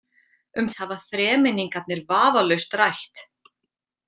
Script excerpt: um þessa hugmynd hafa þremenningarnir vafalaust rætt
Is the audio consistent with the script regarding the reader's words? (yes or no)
no